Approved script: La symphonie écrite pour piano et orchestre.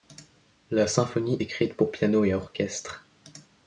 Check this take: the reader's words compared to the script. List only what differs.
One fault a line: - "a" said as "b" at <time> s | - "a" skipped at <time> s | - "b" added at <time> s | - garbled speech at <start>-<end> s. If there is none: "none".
none